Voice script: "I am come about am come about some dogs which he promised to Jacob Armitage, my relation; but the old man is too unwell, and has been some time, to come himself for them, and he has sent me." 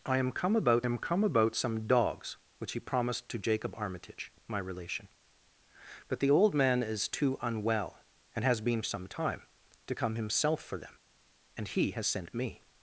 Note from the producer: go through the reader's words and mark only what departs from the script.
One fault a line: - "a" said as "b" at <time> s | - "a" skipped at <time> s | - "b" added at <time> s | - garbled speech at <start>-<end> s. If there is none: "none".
none